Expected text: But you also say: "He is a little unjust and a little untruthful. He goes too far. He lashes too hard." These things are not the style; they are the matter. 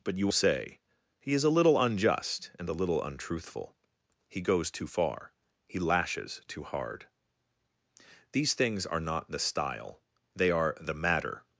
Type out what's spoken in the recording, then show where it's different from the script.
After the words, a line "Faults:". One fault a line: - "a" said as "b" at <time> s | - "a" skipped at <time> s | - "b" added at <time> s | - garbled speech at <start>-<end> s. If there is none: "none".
But you say: "He is a little unjust and a little untruthful. He goes too far. He lashes too hard." These things are not the style; they are the matter.
Faults:
- "also" skipped at 0.3 s